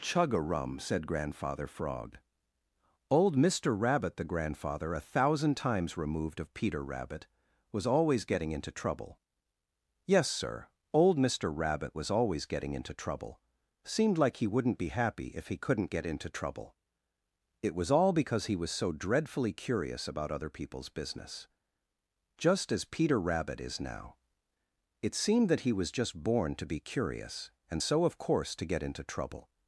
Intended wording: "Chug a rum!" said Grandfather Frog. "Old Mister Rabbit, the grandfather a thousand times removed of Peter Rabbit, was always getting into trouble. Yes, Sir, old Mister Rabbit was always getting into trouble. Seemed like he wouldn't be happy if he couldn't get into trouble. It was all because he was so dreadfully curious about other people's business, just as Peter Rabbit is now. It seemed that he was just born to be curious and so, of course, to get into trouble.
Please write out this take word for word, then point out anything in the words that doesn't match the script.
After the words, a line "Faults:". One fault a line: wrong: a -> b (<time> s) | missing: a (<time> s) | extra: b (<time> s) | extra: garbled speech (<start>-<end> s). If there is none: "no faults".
"Chug a rum!" said Grandfather Frog. "Old Mister Rabbit, the grandfather a thousand times removed of Peter Rabbit, was always getting into trouble. Yes, Sir, old Mister Rabbit was always getting into trouble. Seemed like he wouldn't be happy if he couldn't get into trouble. It was all because he was so dreadfully curious about other people's business, just as Peter Rabbit is now. It seemed that he was just born to be curious and so, of course, to get into trouble.
Faults:
no faults